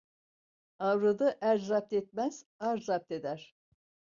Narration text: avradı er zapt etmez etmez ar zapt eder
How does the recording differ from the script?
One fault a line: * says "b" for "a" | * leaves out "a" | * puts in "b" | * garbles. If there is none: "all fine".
* leaves out "etmez"